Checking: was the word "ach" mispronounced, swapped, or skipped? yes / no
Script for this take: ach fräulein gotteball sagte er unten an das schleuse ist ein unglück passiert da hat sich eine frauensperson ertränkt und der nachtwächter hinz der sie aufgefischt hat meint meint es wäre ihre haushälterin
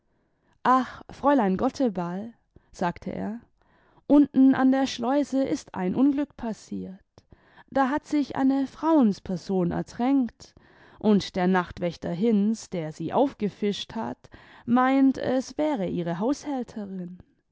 no